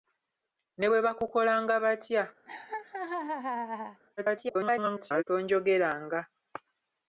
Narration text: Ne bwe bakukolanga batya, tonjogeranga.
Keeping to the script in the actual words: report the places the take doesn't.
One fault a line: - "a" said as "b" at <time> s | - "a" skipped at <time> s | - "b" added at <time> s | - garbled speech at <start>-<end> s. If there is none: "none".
- garbled speech at 4.2-5.2 s